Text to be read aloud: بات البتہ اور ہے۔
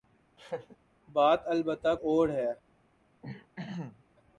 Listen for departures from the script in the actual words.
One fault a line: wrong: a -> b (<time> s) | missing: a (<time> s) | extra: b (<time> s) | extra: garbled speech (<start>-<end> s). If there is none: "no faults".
no faults